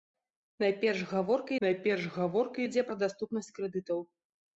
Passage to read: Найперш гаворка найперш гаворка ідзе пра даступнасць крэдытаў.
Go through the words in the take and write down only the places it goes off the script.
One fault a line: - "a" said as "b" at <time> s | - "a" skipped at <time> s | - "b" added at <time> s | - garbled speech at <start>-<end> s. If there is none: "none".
none